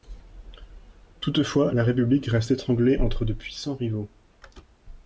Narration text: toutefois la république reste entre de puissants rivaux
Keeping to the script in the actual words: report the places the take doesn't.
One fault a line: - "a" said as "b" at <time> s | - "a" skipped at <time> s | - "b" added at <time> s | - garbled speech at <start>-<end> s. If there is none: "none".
- "étranglée" added at 2.5 s